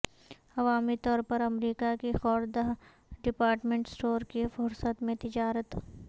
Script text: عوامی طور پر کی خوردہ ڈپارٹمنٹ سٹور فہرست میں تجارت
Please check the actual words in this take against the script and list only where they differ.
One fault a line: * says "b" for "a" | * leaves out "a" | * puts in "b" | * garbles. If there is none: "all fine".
* puts in "امریکہ"
* puts in "کی"